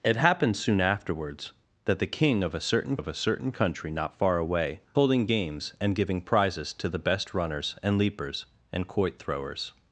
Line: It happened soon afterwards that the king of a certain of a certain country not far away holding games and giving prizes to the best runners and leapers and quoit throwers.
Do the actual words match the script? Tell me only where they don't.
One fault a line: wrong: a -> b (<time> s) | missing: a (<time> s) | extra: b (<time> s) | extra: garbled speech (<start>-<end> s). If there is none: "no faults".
no faults